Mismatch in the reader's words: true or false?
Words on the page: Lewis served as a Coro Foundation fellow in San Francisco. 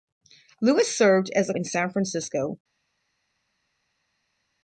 true